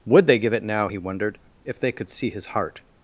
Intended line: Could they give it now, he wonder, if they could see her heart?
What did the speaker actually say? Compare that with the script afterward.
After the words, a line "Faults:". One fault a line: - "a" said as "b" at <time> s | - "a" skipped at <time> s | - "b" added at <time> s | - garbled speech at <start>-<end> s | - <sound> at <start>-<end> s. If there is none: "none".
Would they give it now, he wondered, if they could see his heart?
Faults:
- "Could" said as "Would" at 0.1 s
- "wonder" said as "wondered" at 1.0 s
- "her" said as "his" at 2.3 s